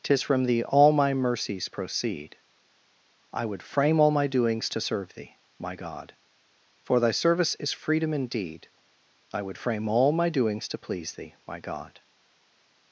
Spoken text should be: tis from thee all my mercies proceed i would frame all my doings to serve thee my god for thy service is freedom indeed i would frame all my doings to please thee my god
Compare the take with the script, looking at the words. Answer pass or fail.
pass